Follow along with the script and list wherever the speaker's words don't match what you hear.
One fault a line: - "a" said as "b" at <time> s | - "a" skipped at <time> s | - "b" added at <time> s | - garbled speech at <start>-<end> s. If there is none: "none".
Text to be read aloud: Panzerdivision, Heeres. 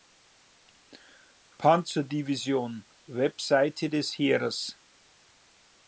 - "Website des" added at 3.1 s